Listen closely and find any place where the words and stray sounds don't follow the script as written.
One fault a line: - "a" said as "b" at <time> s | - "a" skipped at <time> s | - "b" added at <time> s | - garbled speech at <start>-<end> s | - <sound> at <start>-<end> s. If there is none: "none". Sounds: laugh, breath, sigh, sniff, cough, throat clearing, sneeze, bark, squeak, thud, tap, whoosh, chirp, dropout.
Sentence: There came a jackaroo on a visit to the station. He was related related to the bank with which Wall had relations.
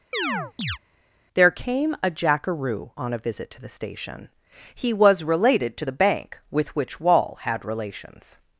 - chirp at 0.1-0.8 s
- "related" skipped at 5.8 s